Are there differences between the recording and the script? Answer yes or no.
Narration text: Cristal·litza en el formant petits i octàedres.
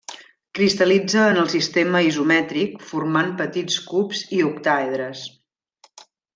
yes